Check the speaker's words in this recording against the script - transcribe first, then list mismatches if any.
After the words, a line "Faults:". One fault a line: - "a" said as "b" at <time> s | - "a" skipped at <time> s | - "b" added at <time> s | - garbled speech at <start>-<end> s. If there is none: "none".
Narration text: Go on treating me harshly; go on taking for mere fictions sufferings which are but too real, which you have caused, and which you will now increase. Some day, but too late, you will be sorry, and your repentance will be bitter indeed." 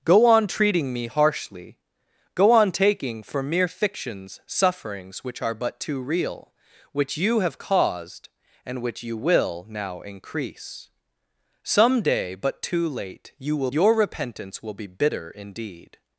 Go on treating me harshly; go on taking for mere fictions sufferings which are but too real, which you have caused, and which you will now increase. Some day, but too late, you will your repentance will be bitter indeed."
Faults:
- "be sorry and" skipped at 13.7 s